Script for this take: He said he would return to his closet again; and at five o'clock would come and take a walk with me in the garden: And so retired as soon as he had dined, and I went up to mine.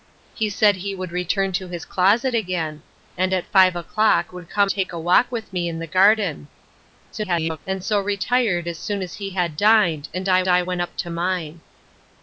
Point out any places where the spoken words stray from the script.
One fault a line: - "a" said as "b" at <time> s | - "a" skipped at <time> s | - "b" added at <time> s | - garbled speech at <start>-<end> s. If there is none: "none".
- "and" skipped at 4.7 s
- garbled speech at 7.1-7.6 s
- "I" added at 10.5 s